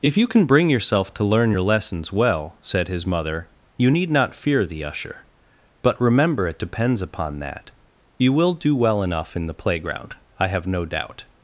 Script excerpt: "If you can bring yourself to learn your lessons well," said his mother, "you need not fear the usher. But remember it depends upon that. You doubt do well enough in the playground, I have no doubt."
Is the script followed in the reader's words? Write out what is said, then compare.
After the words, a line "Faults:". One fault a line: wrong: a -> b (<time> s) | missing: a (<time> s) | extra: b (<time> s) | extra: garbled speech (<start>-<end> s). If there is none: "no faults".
"If you can bring yourself to learn your lessons well," said his mother, "you need not fear the usher. But remember it depends upon that. You will do well enough in the playground, I have no doubt."
Faults:
wrong: doubt -> will (8.3 s)